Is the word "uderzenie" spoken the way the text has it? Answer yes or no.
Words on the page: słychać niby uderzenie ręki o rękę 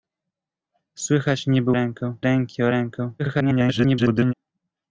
no